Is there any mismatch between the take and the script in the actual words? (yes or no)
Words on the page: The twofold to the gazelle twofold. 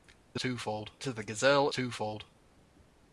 no